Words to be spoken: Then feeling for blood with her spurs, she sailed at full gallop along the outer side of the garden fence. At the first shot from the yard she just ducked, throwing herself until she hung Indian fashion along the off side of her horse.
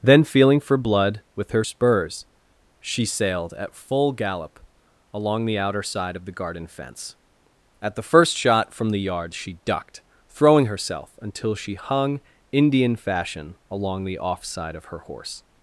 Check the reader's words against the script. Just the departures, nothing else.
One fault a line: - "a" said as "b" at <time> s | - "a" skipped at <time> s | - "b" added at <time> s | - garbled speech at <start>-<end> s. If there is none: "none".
- "just" skipped at 9.6 s